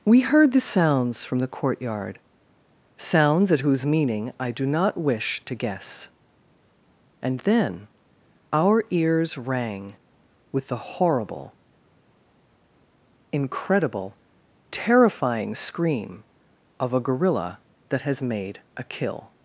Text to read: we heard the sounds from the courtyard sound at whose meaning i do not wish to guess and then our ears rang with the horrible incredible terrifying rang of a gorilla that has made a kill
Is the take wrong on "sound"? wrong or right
wrong